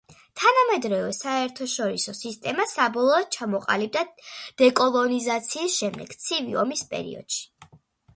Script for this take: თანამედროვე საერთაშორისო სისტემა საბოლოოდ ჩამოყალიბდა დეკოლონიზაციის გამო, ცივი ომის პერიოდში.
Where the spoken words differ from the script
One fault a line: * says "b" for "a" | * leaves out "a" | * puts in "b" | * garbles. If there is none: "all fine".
* says "შემდეგ" for "გამო"